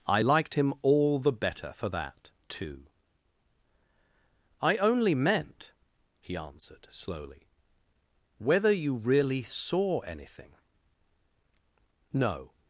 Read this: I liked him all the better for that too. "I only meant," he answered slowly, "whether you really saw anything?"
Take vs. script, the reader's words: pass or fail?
fail